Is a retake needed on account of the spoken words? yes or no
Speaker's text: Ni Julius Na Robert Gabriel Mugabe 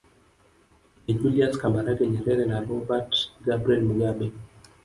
yes